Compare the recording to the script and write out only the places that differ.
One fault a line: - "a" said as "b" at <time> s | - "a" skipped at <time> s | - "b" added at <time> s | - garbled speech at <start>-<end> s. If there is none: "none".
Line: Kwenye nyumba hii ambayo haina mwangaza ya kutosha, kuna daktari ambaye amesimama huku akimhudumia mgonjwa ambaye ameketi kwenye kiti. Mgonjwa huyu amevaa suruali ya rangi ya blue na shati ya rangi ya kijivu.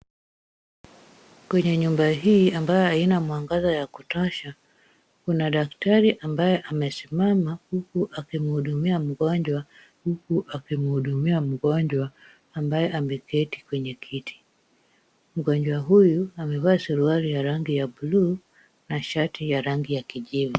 - "huku akimhudumia mgonjwa" added at 10.0 s